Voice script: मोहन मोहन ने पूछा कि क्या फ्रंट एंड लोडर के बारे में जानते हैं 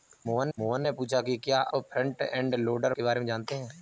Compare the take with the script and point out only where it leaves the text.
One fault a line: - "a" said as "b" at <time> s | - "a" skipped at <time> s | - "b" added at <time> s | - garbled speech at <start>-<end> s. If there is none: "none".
none